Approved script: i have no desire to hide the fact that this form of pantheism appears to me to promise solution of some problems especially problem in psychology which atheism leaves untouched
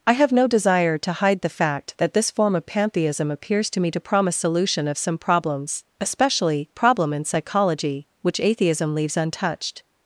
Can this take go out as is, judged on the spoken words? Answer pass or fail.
pass